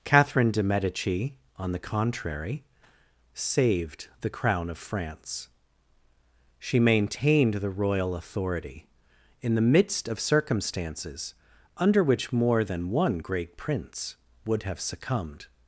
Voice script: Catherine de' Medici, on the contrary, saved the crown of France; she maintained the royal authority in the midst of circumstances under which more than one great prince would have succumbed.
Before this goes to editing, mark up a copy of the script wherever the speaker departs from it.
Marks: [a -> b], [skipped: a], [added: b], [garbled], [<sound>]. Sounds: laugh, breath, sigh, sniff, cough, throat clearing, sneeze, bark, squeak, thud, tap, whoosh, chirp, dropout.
Catherine de' Medici, on the contrary, saved the crown of France; she maintained the royal authority in the midst of circumstances under which more than one great prince would have succumbed.